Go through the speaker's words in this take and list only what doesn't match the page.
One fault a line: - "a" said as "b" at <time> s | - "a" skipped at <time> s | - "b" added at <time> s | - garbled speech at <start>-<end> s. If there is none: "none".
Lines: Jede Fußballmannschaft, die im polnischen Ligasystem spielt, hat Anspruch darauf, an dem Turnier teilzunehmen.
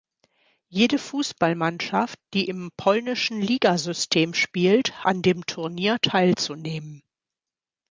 - "hat Anspruch darauf" skipped at 5.0 s